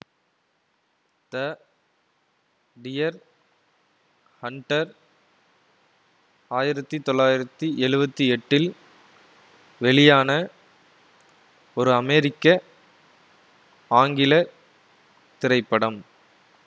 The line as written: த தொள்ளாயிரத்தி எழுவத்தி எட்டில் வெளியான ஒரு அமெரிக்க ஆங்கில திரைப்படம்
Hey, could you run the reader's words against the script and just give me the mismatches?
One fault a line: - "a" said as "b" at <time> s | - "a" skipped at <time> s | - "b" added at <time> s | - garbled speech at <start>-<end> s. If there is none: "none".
- "டியர் ஹண்டர் ஆயிரத்தி" added at 2.8 s